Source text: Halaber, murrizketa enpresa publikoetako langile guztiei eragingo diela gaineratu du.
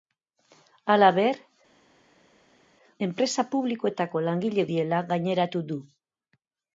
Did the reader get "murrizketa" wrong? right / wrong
wrong